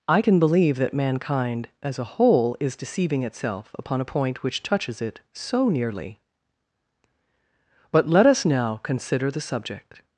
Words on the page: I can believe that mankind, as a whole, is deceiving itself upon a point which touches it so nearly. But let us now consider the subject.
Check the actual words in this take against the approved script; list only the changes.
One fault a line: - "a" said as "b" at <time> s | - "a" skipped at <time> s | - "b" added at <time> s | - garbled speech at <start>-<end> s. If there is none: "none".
none